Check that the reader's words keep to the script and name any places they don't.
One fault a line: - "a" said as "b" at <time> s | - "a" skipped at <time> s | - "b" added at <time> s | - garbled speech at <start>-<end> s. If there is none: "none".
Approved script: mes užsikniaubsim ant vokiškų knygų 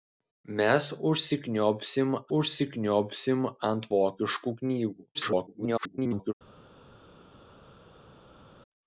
- "užsikniaubsim" added at 2.4 s
- garbled speech at 5.1-6.3 s